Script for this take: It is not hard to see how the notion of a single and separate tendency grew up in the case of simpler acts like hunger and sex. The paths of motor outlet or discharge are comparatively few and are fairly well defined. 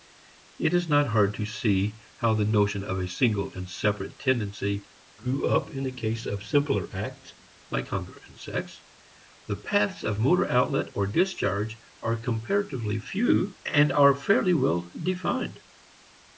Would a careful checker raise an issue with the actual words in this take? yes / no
no